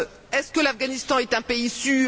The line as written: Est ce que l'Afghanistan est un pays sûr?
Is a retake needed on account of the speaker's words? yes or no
no